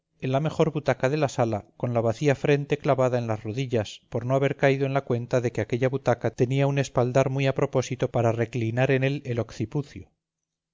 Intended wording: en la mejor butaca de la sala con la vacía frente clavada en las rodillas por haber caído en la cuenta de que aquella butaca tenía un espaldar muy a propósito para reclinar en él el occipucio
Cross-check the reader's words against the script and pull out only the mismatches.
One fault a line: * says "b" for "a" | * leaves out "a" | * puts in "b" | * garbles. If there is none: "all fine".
* puts in "no"